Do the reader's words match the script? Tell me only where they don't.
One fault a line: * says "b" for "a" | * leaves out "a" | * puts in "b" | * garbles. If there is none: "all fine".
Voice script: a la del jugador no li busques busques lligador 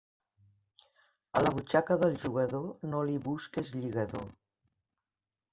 * puts in "butxaca"
* leaves out "busques"